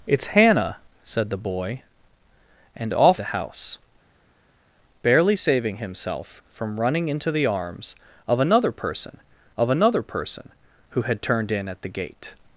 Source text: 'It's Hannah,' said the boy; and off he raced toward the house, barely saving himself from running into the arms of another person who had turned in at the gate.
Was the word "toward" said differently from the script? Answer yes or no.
yes